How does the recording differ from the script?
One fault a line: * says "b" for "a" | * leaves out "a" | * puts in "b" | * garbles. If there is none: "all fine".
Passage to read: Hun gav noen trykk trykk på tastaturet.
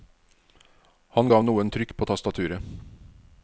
* says "Han" for "Hun"
* leaves out "trykk"